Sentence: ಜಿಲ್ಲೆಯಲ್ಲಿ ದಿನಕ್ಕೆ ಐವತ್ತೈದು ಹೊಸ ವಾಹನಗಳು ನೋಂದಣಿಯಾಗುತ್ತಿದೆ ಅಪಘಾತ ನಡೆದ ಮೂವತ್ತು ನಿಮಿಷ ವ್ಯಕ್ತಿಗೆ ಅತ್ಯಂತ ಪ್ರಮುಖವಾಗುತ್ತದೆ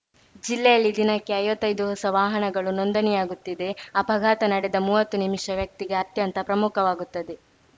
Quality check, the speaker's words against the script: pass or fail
pass